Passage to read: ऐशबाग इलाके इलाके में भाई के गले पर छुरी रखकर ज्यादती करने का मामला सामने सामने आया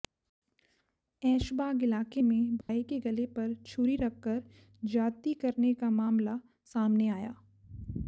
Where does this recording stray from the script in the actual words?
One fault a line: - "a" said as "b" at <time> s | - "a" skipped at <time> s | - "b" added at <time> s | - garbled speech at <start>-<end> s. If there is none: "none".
- "इलाके" skipped at 2.2 s
- "सामने" skipped at 7.1 s